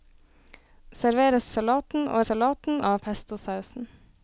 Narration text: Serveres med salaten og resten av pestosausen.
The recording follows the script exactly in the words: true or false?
false